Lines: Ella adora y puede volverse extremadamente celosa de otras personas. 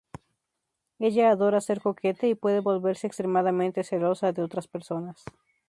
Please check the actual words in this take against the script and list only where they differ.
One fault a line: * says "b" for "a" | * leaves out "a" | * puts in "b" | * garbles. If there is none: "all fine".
* puts in "ser coqueta"